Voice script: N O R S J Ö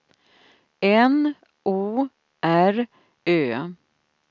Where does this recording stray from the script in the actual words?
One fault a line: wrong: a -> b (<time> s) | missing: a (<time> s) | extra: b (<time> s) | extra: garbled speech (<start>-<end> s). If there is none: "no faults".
missing: S J (2.9 s)